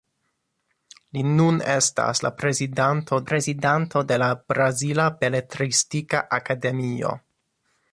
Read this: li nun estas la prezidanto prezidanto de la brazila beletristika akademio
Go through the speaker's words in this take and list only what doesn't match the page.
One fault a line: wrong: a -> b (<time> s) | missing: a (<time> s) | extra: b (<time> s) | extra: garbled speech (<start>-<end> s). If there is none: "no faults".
no faults